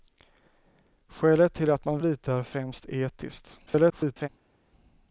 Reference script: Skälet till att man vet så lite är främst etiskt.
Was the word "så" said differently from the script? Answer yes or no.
yes